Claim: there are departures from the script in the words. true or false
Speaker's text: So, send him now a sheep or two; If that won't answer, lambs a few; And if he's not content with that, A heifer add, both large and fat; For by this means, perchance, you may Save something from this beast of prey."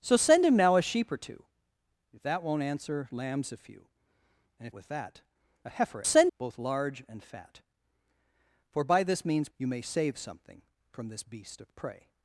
true